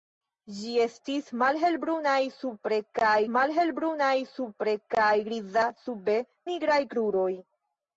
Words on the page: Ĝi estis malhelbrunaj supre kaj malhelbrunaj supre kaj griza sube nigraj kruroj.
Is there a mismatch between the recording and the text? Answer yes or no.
no